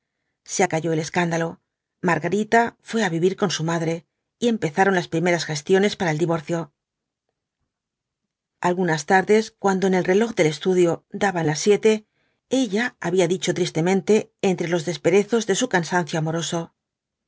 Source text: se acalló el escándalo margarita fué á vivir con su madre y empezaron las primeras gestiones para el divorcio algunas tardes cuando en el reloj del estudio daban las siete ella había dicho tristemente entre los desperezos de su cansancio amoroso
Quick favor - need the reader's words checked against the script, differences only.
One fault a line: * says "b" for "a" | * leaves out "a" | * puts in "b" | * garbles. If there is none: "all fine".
all fine